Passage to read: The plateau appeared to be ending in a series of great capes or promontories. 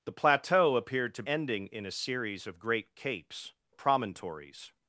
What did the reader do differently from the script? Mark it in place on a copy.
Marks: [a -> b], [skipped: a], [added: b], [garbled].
The plateau appeared to [skipped: be] ending in a series of great capes [skipped: or] promontories.